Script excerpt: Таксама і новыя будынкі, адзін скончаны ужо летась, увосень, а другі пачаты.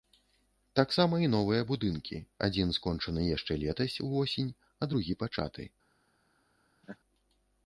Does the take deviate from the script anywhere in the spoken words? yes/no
yes